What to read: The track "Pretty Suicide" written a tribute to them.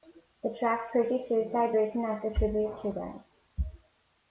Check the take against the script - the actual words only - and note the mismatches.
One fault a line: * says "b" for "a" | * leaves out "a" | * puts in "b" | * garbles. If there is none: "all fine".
* puts in "as"